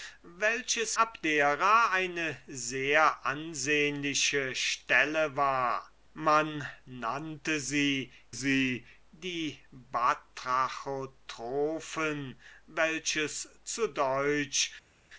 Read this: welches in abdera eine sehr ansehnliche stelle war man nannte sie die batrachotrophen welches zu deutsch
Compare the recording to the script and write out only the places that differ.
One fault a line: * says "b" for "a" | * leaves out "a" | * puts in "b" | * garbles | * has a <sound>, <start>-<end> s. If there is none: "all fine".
* leaves out "in"
* puts in "sie"